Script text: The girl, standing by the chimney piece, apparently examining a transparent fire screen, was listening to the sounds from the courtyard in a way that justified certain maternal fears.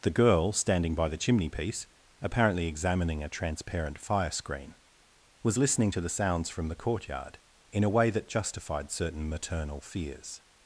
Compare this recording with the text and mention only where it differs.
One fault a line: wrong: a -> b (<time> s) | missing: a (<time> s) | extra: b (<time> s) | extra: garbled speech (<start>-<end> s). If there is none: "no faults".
no faults